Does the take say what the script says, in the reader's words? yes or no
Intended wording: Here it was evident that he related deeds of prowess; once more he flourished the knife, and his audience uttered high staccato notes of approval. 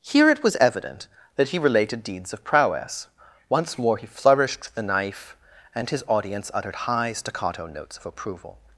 yes